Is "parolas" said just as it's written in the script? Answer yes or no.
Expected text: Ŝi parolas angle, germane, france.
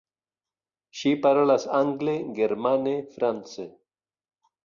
yes